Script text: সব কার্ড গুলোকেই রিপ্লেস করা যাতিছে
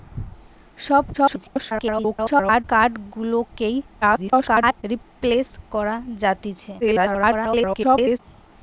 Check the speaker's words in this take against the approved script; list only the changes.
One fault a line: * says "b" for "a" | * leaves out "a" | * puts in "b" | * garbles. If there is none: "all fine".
* garbles
* garbles
* garbles